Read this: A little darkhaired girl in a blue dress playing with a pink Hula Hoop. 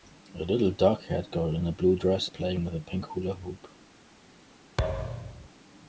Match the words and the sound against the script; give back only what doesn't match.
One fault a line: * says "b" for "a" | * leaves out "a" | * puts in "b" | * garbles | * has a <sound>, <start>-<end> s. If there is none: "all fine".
* has a thud, 4.8-5.5 s